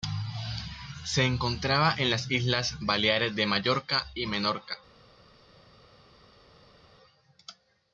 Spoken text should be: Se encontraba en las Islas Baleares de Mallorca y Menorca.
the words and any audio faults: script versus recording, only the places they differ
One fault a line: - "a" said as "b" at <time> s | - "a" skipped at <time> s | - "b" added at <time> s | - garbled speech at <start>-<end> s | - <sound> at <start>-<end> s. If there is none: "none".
none